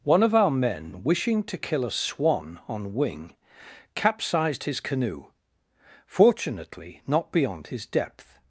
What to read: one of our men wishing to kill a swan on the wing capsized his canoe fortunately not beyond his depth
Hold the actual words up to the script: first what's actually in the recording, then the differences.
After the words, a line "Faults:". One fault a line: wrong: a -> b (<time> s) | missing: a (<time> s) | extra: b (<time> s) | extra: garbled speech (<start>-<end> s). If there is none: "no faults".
one of our men wishing to kill a swan on wing capsized his canoe fortunately not beyond his depth
Faults:
missing: the (3.0 s)